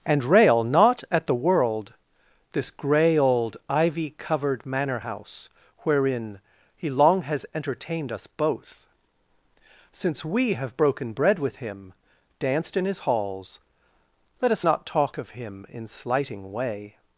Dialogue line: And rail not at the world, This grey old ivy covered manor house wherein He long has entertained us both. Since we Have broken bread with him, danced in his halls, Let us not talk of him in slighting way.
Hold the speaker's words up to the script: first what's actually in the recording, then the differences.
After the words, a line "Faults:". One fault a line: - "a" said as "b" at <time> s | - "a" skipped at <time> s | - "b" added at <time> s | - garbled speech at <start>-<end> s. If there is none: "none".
And rail not at the world, This grey old ivy covered manor house wherein He long has entertained us both. Since we Have broken bread with him, danced in his halls, Let us not talk of him in slighting way.
Faults:
none